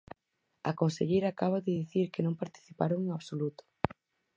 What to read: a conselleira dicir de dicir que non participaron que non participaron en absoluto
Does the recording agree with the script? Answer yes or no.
no